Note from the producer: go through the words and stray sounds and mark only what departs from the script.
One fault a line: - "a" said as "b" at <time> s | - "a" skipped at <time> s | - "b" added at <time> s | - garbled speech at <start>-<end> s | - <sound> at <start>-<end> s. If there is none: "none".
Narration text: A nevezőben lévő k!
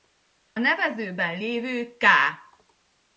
none